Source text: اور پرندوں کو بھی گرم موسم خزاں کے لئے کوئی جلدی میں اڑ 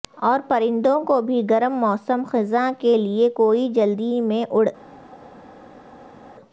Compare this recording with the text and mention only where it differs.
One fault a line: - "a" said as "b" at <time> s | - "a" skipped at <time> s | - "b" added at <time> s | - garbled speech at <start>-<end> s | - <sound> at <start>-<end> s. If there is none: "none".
none